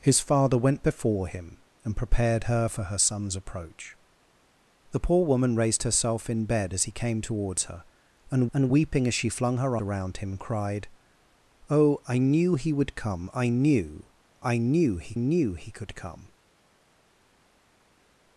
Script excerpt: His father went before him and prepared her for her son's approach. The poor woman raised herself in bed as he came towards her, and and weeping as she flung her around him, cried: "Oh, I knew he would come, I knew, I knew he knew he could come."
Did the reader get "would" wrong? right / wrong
right